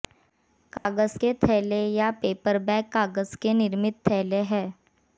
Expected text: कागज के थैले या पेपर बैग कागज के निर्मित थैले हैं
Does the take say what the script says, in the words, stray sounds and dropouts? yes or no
no